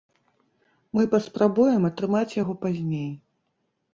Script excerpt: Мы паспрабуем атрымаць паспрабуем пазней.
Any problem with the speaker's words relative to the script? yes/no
yes